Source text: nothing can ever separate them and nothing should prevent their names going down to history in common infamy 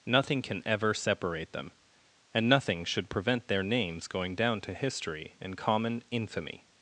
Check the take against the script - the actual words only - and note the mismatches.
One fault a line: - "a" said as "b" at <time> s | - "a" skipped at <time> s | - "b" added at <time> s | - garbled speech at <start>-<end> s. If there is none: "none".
none